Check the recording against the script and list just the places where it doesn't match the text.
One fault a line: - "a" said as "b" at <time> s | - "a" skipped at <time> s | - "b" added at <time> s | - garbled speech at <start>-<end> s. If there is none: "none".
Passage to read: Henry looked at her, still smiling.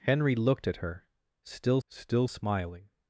- "still" added at 1.9 s